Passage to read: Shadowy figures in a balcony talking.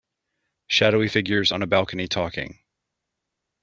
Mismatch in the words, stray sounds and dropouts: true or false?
true